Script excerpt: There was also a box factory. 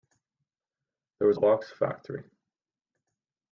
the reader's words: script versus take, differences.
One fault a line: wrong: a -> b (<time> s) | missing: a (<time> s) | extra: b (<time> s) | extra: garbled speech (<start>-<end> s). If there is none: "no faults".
missing: also (1.4 s)